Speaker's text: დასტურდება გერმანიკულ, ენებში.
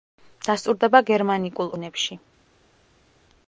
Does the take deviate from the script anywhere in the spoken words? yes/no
no